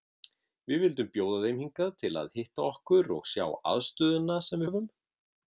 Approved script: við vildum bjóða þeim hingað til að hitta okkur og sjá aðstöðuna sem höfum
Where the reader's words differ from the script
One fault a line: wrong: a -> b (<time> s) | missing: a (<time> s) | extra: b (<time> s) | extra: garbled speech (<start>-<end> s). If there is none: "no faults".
no faults